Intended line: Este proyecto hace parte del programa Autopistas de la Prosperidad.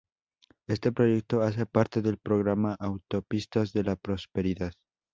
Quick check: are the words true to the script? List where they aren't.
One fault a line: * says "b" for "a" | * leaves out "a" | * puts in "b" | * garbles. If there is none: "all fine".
all fine